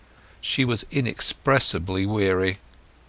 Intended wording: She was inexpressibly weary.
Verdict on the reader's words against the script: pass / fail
pass